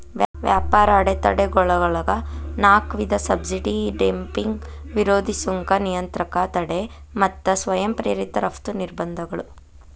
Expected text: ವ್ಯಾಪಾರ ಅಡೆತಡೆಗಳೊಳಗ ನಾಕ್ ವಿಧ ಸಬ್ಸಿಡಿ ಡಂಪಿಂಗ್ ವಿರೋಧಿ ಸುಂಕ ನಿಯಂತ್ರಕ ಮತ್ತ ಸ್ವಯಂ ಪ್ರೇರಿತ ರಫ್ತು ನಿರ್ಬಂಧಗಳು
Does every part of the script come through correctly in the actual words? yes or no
no